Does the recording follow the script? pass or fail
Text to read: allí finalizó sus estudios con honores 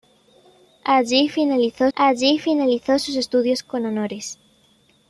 fail